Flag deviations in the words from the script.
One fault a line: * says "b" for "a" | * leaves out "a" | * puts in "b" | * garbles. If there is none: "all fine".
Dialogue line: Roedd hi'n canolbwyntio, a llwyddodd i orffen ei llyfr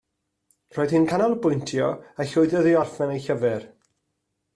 all fine